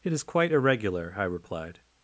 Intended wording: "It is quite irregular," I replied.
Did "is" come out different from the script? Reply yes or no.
no